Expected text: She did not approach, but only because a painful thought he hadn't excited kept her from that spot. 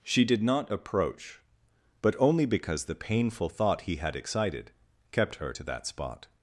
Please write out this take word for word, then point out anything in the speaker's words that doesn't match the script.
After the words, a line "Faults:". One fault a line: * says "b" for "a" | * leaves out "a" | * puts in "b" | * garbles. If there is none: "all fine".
She did not approach, but only because the painful thought he had excited kept her to that spot.
Faults:
* says "the" for "a"
* says "had" for "hadn't"
* says "to" for "from"